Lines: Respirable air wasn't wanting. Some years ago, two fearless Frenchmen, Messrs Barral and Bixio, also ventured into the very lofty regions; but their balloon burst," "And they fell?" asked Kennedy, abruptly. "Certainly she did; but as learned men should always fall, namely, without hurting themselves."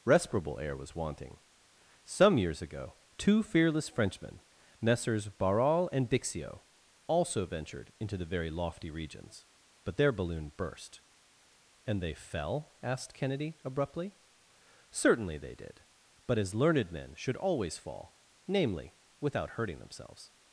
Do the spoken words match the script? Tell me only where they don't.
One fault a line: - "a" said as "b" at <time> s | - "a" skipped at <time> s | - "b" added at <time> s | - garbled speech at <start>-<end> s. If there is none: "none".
- "wasn't" said as "was" at 0.8 s
- "she" said as "they" at 15.4 s